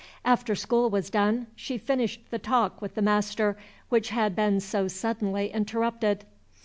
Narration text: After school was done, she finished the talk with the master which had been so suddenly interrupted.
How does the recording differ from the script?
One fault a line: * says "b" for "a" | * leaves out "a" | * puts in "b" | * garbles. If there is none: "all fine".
all fine